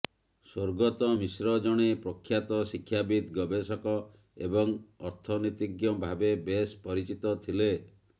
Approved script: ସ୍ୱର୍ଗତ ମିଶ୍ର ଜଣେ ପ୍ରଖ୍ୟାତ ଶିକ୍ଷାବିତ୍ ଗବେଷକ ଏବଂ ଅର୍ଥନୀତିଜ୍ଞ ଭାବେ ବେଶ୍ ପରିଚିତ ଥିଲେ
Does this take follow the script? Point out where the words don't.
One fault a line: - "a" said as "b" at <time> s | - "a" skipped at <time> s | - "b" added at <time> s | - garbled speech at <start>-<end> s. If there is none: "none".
none